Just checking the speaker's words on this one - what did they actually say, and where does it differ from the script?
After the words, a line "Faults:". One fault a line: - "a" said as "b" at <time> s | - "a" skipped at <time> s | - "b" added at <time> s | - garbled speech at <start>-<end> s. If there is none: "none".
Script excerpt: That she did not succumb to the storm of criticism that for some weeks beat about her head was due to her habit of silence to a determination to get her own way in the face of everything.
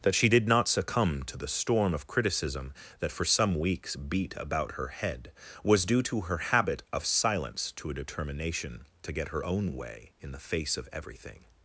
That she did not succumb to the storm of criticism that for some weeks beat about her head was due to her habit of silence to a determination to get her own way in the face of everything.
Faults:
none